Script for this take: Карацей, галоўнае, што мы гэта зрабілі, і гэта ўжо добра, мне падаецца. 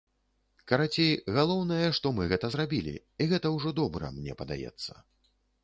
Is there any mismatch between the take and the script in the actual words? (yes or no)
no